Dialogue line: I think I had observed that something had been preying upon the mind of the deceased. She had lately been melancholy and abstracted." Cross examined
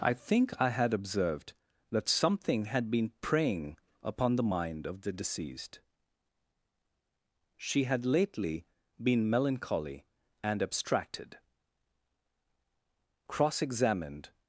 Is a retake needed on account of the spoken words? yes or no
no